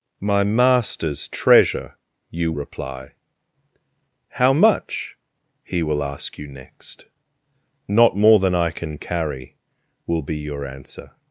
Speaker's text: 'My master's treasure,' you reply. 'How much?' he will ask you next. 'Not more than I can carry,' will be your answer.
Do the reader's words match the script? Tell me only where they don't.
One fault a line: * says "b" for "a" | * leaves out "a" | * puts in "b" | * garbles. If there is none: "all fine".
all fine